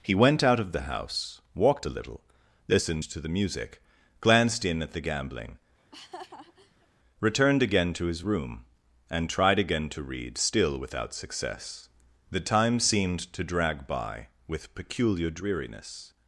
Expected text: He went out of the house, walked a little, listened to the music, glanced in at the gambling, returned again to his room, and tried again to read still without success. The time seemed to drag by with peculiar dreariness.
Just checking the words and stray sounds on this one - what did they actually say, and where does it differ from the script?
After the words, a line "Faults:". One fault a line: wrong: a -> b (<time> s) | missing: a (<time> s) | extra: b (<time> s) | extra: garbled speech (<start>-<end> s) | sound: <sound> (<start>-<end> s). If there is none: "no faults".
He went out of the house, walked a little, listened to the music, glanced in at the gambling, returned again to his room, and tried again to read still without success. The time seemed to drag by with peculiar dreariness.
Faults:
sound: laugh (5.8-6.9 s)